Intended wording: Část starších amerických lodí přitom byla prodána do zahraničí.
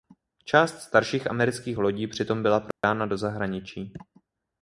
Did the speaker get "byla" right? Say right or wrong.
right